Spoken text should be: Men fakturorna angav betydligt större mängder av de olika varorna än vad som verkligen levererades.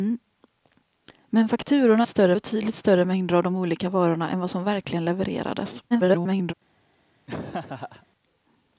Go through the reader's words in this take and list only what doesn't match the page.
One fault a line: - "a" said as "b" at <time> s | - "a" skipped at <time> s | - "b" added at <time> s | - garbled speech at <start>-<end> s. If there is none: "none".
- "angav" said as "större" at 2.1 s
- garbled speech at 5.9-6.5 s